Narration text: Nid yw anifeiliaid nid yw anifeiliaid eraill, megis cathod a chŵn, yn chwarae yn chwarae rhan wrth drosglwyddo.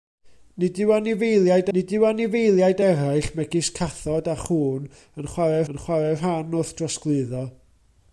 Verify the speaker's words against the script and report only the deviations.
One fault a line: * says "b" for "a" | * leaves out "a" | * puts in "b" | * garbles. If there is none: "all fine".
all fine